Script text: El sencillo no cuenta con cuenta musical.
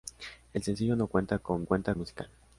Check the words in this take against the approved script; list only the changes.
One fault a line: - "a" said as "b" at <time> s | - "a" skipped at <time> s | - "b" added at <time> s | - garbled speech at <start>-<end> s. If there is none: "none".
none